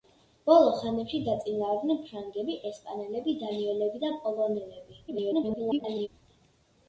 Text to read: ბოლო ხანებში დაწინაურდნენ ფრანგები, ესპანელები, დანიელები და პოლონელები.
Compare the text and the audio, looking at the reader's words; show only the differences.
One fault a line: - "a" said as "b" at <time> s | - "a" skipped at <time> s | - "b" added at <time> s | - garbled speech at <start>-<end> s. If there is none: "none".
- garbled speech at 5.1-6.1 s